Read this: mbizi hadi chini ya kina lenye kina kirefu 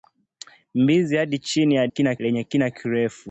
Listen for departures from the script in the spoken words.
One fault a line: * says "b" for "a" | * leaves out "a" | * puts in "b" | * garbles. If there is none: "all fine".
all fine